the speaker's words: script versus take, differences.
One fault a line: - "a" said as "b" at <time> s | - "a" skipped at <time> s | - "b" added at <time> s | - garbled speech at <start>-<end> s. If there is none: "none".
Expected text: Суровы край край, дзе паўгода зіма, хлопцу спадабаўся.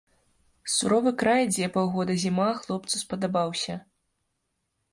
- "край" skipped at 1.4 s